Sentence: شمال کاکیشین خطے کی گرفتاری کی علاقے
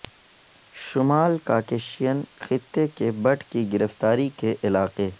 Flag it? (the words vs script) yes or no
yes